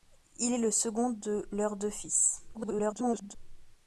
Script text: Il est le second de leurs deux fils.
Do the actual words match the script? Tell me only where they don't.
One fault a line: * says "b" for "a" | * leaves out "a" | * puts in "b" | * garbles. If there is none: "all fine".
* garbles